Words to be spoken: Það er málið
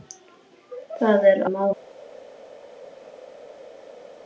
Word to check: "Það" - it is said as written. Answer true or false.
true